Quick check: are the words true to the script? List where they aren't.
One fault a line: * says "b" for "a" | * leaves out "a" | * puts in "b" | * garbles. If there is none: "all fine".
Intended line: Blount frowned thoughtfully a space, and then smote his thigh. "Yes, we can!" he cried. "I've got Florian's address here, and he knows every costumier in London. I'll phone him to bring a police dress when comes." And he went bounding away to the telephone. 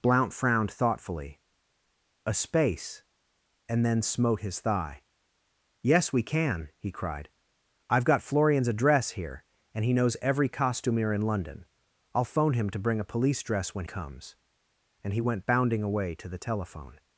all fine